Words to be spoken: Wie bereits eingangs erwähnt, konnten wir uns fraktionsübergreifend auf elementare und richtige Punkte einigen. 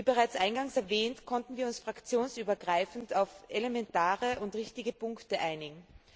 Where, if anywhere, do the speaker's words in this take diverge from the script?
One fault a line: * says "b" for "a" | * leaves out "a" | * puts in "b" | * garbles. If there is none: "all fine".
all fine